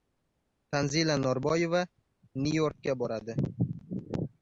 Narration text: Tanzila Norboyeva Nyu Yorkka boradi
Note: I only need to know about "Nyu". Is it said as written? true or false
true